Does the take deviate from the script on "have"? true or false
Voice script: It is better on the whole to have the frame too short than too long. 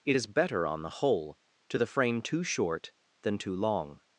true